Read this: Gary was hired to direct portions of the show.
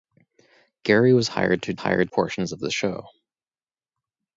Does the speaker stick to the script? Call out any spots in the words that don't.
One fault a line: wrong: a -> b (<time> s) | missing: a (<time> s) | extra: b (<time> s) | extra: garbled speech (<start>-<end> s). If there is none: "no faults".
wrong: direct -> hired (1.8 s)